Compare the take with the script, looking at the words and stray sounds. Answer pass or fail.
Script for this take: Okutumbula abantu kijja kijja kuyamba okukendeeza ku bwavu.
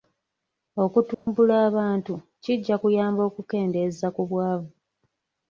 fail